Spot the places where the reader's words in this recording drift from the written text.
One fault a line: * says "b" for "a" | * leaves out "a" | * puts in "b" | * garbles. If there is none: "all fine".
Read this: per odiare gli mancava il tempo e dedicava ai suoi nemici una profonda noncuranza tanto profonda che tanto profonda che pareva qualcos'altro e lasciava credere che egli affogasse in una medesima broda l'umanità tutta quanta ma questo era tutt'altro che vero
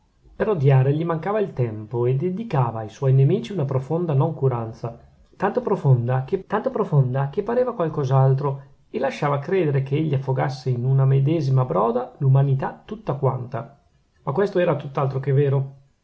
all fine